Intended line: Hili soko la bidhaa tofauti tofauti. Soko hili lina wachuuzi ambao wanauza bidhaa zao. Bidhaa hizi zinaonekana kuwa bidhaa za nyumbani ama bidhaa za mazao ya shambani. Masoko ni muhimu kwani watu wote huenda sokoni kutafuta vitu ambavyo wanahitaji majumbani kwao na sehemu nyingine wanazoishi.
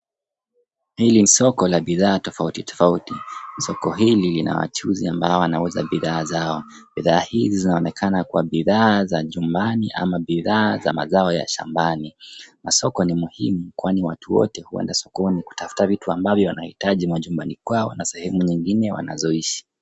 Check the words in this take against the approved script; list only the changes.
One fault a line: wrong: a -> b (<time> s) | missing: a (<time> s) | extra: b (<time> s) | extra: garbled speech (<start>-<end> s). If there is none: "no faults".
no faults